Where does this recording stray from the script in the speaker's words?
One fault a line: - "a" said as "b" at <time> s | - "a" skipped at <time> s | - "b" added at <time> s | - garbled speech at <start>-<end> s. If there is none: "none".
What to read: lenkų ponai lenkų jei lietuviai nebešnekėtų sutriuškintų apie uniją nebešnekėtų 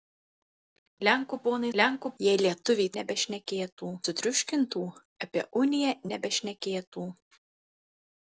none